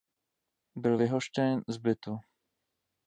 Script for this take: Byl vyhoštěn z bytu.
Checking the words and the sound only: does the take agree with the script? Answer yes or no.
yes